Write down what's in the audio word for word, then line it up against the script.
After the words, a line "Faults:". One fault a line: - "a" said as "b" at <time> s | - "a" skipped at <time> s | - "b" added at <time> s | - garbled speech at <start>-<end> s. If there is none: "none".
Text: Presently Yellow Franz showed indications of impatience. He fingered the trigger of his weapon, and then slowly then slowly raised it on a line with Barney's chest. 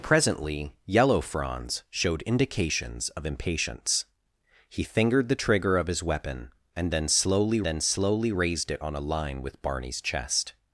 Presently Yellow Franz showed indications of impatience. He fingered the trigger of his weapon, and then slowly then slowly raised it on a line with Barney's chest.
Faults:
none